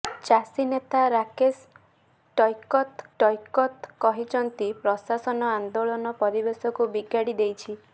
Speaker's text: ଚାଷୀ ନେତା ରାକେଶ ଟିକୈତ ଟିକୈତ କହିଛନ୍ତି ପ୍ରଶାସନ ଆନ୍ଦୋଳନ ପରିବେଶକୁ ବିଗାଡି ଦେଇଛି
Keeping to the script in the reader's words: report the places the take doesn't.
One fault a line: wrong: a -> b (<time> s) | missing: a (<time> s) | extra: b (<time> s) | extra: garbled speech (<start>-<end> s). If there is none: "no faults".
no faults